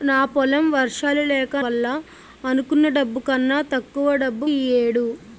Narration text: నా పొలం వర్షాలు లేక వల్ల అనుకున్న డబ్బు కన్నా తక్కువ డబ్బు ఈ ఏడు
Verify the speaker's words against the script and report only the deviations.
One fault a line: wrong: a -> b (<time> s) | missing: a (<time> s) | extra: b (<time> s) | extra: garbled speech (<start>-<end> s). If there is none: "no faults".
no faults